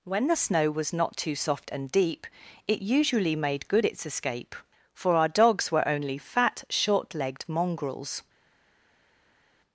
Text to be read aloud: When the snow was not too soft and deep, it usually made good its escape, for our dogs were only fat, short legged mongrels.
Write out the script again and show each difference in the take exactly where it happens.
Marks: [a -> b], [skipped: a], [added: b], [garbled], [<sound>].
When the snow was not too soft and deep, it usually made good its escape, for our dogs were only fat, short legged mongrels.